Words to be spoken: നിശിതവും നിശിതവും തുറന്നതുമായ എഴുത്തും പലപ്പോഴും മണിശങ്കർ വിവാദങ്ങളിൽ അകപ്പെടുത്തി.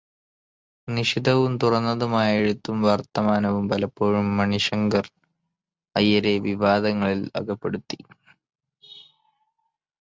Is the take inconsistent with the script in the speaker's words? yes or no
yes